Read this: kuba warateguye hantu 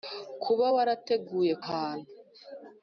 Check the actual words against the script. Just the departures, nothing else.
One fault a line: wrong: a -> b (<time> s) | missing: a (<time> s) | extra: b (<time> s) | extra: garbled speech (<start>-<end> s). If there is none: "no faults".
no faults